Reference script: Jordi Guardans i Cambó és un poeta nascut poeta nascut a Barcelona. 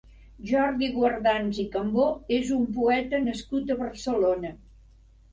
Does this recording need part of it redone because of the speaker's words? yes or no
yes